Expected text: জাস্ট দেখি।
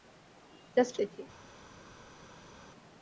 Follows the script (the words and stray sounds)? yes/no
yes